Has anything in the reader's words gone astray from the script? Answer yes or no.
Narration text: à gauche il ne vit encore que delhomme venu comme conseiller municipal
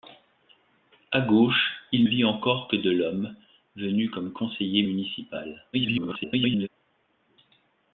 yes